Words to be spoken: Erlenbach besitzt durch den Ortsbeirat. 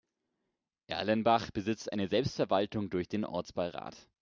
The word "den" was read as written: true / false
true